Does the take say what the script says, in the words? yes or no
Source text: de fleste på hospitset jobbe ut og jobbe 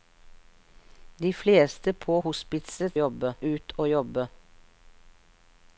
yes